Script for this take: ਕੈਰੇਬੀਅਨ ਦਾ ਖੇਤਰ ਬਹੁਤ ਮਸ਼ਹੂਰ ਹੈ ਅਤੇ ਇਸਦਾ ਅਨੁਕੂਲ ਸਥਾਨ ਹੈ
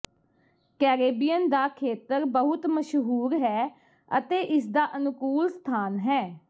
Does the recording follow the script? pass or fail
pass